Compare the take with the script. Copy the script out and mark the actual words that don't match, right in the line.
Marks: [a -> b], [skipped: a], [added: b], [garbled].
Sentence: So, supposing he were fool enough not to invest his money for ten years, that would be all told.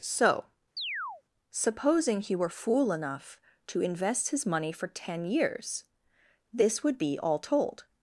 So, supposing he were fool enough [skipped: not] to invest his money for ten years, [that -> this] would be all told.